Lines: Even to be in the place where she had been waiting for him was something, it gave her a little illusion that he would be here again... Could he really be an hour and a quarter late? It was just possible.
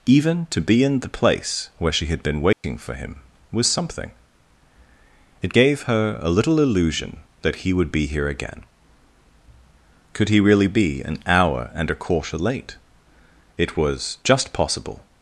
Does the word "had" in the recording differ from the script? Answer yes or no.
no